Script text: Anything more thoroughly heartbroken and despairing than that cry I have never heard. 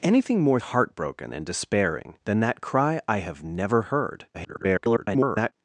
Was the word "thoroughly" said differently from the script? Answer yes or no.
yes